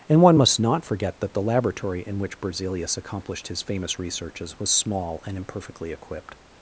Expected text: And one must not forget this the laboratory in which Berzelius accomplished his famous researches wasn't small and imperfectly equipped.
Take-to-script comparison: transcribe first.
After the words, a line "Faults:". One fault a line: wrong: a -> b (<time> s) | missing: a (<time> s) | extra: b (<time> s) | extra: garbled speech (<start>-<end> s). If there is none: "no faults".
And one must not forget that the laboratory in which Berzelius accomplished his famous researches was small and imperfectly equipped.
Faults:
wrong: this -> that (1.2 s)
wrong: wasn't -> was (4.6 s)